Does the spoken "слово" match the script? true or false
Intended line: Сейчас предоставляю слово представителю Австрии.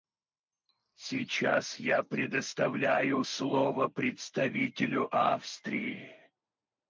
true